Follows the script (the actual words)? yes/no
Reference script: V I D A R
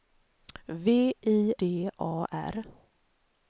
yes